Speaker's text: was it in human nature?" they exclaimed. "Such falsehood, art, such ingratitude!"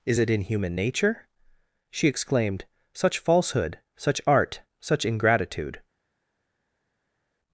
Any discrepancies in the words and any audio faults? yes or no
yes